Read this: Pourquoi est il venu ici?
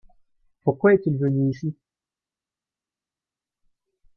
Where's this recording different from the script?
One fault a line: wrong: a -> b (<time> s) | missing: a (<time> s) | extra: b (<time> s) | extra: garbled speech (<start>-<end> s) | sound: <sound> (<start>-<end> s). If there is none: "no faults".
no faults